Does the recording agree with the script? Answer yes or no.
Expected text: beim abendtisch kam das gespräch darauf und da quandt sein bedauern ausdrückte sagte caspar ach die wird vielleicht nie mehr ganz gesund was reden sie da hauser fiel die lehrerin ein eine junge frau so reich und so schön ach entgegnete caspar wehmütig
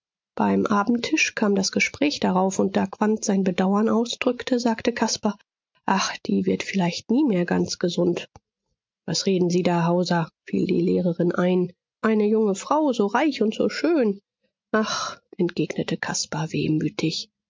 yes